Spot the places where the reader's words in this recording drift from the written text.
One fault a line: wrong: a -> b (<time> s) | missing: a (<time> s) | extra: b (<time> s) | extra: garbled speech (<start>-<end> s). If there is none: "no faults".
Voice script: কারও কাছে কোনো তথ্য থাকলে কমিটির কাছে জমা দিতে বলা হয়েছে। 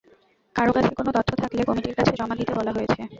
no faults